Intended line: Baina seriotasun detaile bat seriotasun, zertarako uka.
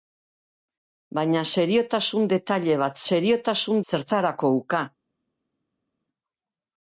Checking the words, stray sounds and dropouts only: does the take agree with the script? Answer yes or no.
yes